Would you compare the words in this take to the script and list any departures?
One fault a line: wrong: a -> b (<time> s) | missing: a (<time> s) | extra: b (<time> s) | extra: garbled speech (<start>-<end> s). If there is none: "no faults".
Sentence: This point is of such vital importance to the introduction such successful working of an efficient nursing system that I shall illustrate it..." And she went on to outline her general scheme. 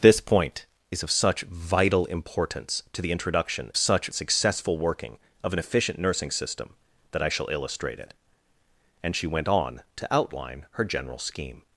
no faults